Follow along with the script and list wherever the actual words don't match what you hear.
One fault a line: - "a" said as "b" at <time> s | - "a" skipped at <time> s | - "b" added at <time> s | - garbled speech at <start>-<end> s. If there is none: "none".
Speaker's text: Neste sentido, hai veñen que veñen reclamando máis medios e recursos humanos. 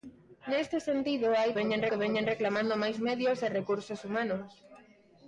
none